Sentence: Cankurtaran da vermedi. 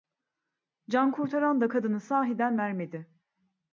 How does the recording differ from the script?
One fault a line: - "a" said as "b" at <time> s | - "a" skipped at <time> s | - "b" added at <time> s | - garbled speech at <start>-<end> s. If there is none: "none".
- "kadını sahiden" added at 1.7 s